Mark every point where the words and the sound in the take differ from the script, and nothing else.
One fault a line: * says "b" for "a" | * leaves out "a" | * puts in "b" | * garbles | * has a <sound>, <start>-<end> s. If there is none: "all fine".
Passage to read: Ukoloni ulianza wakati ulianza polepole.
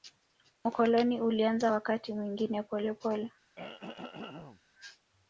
* says "mwingine" for "ulianza"
* has a throat clearing, 3.6-4.6 s